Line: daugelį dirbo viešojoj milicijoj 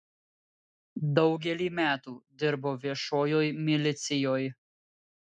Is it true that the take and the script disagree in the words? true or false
true